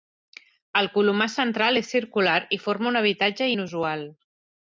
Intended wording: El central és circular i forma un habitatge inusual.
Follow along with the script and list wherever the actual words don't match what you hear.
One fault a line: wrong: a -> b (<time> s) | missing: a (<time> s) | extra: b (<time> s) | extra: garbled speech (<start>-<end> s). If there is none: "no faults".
extra: colomar (0.9 s)